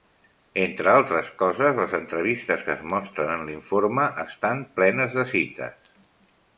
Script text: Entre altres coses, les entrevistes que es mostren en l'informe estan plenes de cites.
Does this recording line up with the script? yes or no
yes